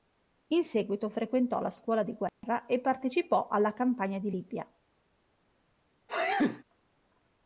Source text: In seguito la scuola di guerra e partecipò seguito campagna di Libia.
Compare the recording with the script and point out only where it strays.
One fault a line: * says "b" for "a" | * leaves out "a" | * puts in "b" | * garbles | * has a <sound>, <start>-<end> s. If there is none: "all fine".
* puts in "frequentò"
* has a dropout, 2.3-2.4 s
* says "alla" for "seguito"
* has a sneeze, 6.1-6.6 s